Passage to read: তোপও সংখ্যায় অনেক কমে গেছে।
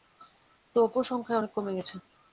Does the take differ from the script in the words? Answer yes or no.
no